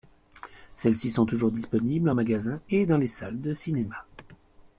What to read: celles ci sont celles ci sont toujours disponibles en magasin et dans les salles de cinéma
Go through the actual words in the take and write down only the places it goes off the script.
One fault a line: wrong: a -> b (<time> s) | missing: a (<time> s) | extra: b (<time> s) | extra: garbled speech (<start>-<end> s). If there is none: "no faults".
missing: celles ci sont (1.3 s)